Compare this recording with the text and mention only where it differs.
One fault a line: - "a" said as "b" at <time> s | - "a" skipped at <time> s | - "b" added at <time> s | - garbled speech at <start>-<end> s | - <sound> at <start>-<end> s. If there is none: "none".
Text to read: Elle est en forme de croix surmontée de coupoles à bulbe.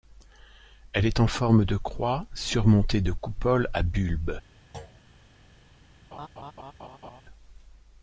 - thud at 4.7-5.0 s
- laugh at 6.1-7.2 s